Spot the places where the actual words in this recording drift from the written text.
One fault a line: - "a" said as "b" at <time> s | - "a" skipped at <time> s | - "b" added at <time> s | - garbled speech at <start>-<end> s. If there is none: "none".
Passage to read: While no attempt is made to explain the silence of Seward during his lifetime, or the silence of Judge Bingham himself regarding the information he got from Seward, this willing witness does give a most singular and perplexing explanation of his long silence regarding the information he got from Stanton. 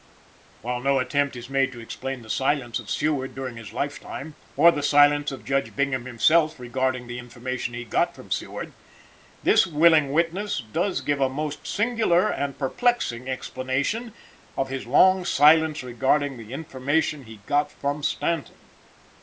none